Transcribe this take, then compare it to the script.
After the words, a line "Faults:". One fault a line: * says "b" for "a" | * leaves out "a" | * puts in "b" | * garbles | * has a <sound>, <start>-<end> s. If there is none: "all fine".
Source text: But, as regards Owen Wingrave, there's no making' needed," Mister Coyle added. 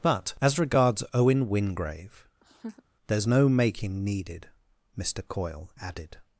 But, as regards Owen Wingrave, there's no making' needed," Mister Coyle added.
Faults:
* has a laugh, 2.4-2.8 s